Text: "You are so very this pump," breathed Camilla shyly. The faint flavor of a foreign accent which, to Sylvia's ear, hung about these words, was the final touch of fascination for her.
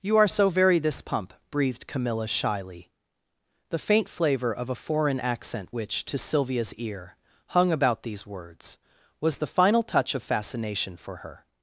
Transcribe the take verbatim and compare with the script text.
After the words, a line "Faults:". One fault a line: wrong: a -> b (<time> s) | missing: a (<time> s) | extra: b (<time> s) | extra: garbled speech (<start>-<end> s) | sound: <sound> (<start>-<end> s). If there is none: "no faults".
"You are so very this pump," breathed Camilla shyly. The faint flavor of a foreign accent which, to Sylvia's ear, hung about these words, was the final touch of fascination for her.
Faults:
no faults